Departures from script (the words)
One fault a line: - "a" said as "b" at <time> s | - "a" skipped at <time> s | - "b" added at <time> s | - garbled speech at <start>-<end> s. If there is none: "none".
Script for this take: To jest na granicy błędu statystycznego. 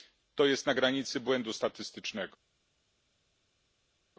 none